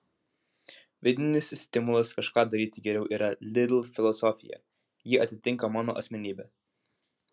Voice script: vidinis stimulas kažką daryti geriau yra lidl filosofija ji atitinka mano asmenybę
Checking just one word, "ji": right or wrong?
right